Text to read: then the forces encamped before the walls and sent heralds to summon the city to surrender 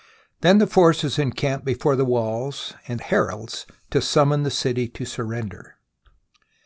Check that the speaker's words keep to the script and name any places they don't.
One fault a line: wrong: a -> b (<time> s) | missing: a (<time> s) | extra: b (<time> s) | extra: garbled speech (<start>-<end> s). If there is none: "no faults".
missing: sent (3.0 s)